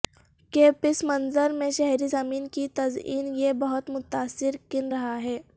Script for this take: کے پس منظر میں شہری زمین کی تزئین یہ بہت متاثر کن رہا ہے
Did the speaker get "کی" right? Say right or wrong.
right